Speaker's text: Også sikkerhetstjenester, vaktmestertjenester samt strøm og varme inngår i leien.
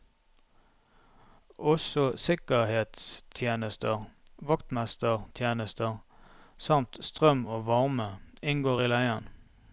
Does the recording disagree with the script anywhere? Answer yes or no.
no